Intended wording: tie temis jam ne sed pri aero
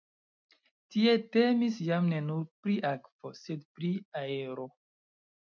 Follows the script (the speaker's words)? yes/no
no